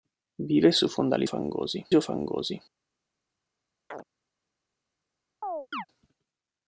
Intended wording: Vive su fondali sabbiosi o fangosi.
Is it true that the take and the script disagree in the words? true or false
true